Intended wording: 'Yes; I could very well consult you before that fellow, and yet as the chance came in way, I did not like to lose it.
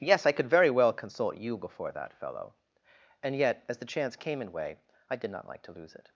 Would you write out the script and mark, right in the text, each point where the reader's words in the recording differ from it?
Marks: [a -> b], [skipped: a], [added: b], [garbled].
'Yes; I could very well consult you before that fellow, and yet as the chance came in way, I did not like to lose it.